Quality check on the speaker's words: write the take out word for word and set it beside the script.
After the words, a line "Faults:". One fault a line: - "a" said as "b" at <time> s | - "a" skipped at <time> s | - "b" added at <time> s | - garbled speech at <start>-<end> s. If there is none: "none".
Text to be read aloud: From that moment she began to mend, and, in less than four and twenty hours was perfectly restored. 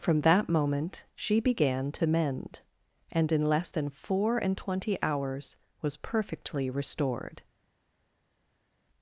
From that moment she began to mend, and, in less than four and twenty hours was perfectly restored.
Faults:
none